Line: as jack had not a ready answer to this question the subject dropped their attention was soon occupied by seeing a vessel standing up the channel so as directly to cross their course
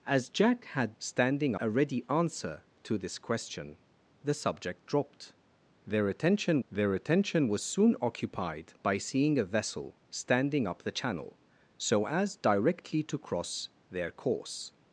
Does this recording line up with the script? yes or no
no